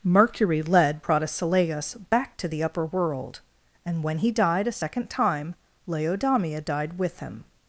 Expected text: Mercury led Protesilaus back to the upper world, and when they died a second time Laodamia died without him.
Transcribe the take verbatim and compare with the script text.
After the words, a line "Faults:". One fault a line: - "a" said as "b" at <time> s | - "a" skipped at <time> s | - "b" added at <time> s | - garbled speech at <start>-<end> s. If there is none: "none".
Mercury led Protesilaus back to the upper world, and when he died a second time Laodamia died with him.
Faults:
- "they" said as "he" at 4.2 s
- "without" said as "with" at 7.0 s